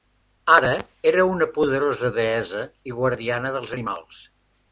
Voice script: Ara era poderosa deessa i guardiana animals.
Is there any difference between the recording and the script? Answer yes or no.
yes